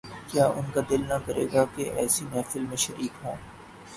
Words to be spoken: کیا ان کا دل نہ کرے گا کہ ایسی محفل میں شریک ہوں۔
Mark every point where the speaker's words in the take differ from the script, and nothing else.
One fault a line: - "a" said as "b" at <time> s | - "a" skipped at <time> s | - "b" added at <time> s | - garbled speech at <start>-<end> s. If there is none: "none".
none